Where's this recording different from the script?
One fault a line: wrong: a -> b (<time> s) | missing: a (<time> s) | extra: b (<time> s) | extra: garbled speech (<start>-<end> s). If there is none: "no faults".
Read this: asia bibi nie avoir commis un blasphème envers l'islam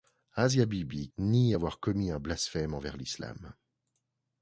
no faults